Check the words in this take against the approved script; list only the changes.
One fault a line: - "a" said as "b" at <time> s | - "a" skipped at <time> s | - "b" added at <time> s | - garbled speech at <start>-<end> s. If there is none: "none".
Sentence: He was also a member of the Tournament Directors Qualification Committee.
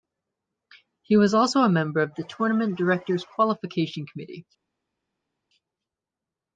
none